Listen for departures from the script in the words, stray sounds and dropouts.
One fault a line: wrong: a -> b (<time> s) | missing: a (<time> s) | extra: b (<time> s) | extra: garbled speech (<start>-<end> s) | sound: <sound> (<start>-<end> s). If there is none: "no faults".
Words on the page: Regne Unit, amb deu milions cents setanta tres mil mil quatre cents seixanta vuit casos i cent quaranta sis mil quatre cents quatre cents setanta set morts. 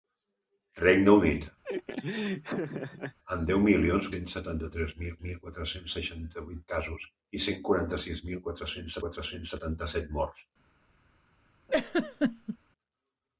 sound: laugh (1.6-3.2 s)
sound: laugh (11.7-12.6 s)